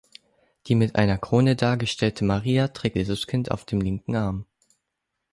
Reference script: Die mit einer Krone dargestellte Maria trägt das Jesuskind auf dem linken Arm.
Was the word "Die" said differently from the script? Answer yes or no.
no